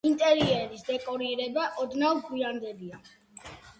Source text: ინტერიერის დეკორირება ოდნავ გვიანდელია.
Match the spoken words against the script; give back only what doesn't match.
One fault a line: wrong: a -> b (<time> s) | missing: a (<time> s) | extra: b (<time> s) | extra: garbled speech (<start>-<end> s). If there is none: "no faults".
no faults